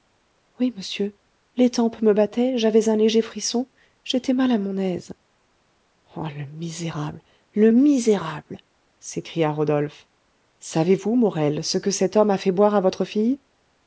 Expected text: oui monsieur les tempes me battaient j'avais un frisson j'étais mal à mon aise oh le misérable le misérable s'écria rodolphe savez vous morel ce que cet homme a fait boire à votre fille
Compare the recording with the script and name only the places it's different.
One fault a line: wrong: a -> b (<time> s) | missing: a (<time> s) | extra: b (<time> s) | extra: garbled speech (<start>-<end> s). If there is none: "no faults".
extra: léger (3.0 s)